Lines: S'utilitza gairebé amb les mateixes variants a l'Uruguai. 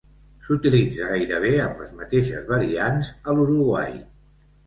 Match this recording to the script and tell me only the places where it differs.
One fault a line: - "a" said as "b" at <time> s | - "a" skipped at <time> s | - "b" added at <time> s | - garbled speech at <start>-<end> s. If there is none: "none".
none